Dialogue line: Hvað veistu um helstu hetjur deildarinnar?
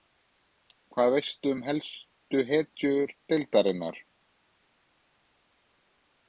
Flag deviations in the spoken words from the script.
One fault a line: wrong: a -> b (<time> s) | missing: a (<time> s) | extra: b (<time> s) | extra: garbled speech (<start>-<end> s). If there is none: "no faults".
no faults